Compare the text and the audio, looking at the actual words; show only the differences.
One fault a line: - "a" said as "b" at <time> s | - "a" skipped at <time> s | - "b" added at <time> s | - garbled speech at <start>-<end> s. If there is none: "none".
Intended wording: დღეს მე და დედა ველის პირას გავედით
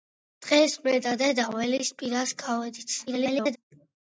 - garbled speech at 3.1-3.6 s